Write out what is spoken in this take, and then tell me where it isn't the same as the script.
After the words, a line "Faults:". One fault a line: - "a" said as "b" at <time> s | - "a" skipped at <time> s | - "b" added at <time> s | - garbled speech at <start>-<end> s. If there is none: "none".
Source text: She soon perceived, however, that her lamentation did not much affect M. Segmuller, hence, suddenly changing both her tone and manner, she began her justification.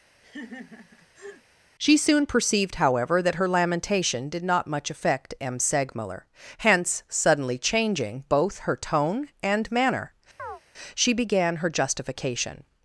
She soon perceived, however, that her lamentation did not much affect M. Segmuller, hence, suddenly changing both her tone and manner, she began her justification.
Faults:
none